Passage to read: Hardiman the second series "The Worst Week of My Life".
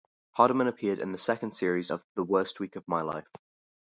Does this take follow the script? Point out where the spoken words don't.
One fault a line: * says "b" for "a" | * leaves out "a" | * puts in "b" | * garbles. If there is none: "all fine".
* puts in "appeared in"
* puts in "of"